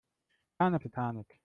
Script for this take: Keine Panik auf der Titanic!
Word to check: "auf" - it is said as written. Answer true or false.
false